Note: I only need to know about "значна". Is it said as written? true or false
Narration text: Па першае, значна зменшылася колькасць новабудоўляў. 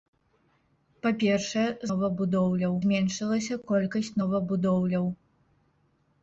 false